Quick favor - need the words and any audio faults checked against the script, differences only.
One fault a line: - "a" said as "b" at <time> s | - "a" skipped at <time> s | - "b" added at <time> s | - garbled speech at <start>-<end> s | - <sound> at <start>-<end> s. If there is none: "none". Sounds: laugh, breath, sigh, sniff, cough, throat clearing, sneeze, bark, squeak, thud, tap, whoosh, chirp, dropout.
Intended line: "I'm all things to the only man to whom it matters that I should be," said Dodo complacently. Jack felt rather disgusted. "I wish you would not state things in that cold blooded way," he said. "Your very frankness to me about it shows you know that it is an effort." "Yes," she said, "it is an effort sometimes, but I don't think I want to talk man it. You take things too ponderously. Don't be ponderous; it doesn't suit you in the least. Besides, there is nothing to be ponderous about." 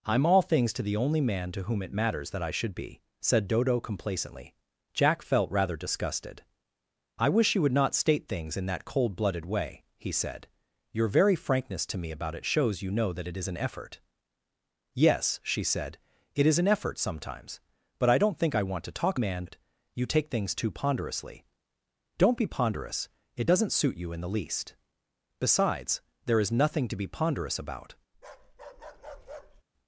- bark at 28.1-29.6 s